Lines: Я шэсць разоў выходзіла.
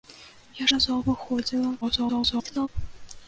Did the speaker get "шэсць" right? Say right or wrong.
wrong